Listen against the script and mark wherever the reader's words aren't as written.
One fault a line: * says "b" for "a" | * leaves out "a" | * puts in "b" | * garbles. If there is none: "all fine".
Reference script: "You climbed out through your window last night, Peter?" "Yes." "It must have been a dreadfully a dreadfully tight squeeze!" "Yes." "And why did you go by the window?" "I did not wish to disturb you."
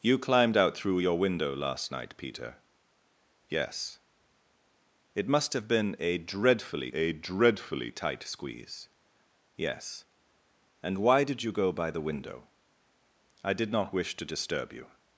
all fine